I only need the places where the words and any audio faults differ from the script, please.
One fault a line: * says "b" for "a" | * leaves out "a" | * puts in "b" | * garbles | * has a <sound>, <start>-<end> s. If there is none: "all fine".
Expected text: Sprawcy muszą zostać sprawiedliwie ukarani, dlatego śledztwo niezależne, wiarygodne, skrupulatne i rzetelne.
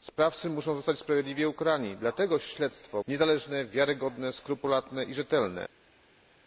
all fine